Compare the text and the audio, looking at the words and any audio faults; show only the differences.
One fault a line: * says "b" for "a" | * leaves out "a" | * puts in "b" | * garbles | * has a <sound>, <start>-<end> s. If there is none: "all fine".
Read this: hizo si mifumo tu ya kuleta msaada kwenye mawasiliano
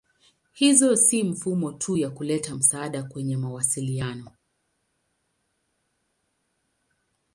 all fine